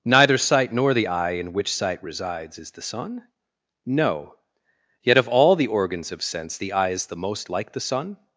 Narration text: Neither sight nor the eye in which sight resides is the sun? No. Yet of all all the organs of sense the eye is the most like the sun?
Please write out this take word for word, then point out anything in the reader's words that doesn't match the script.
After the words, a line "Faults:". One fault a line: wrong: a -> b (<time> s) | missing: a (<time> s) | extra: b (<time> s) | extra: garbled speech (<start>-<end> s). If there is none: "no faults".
Neither sight nor the eye in which sight resides is the sun? No. Yet of all the organs of sense the eye is the most like the sun?
Faults:
missing: all (5.5 s)